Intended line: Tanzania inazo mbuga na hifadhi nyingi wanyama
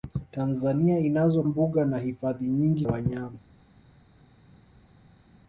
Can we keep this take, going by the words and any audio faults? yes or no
yes